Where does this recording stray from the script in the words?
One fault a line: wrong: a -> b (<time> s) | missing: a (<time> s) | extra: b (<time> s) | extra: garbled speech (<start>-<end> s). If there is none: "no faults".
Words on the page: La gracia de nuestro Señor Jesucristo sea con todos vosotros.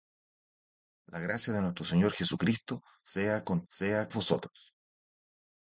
wrong: todos -> sea (3.7 s)